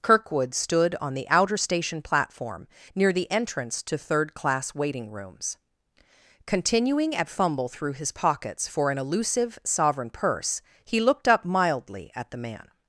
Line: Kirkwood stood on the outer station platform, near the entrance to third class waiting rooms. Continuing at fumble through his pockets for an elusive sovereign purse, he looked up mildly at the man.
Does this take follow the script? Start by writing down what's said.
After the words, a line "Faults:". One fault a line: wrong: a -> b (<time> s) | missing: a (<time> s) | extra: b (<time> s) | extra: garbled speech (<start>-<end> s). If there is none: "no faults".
Kirkwood stood on the outer station platform, near the entrance to third class waiting rooms. Continuing at fumble through his pockets for an elusive sovereign purse, he looked up mildly at the man.
Faults:
no faults